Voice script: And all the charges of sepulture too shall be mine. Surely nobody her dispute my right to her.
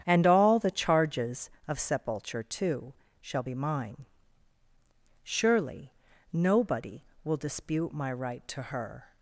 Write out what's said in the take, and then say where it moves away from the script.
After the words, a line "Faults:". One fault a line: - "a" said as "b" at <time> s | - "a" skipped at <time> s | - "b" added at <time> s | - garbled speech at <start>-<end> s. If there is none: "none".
And all the charges of sepulture too shall be mine. Surely nobody will dispute my right to her.
Faults:
- "her" said as "will" at 7.2 s